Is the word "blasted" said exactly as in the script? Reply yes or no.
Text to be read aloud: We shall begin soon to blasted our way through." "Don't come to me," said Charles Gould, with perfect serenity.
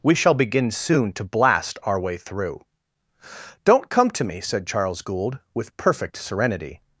no